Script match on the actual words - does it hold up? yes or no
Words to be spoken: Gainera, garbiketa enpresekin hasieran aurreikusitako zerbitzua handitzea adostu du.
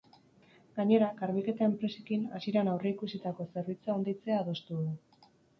yes